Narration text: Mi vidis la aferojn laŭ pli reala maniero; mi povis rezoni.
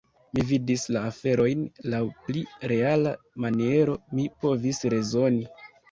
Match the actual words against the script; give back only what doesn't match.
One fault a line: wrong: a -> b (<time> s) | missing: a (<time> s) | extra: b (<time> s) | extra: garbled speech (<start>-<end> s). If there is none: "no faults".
no faults